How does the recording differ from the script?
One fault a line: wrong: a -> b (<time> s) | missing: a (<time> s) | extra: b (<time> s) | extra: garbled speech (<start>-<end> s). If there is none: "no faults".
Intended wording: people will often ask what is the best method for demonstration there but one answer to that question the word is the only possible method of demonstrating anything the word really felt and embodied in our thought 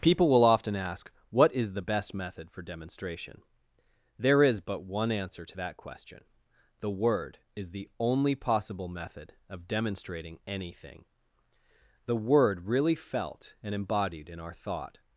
extra: is (4.4 s)